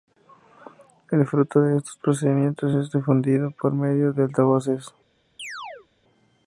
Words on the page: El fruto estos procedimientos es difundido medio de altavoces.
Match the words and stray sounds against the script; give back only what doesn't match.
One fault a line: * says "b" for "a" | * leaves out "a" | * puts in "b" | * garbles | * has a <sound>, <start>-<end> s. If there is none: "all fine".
* puts in "de"
* puts in "por"
* has a chirp, 5.4-5.9 s